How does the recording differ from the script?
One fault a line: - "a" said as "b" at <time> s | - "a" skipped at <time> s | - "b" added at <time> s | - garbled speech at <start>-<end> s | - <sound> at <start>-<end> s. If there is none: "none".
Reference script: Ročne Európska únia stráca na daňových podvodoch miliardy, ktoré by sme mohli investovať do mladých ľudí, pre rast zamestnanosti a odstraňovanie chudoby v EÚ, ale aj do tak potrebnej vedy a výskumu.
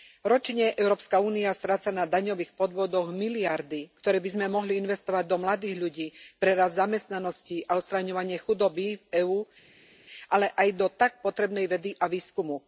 none